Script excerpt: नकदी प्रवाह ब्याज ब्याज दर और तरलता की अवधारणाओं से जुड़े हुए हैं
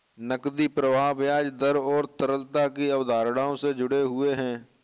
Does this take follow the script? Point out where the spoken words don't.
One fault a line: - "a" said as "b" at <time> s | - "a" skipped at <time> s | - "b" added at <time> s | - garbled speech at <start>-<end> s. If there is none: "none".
- "ब्याज" skipped at 1.5 s